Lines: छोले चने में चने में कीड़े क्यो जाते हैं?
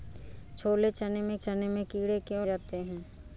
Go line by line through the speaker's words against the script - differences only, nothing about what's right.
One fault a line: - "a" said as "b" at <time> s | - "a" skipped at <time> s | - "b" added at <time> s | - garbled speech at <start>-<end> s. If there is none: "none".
none